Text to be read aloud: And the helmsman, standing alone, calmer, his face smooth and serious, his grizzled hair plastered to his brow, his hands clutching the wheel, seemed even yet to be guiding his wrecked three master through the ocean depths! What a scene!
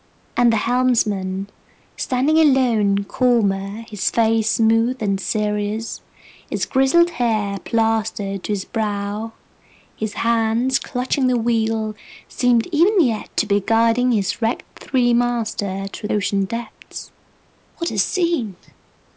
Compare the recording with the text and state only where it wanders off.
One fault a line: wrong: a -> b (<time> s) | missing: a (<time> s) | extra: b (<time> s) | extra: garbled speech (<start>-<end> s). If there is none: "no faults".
missing: the (16.1 s)